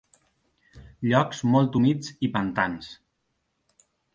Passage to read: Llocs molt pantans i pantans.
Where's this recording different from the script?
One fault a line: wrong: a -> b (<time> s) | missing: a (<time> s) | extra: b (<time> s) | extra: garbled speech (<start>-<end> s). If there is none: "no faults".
wrong: pantans -> humits (1.8 s)